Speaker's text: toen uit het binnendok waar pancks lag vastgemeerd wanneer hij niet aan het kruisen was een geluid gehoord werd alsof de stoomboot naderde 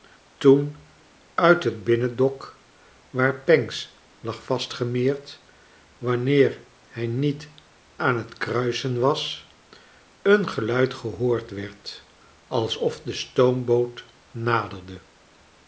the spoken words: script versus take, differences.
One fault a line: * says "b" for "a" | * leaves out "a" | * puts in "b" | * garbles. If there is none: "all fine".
all fine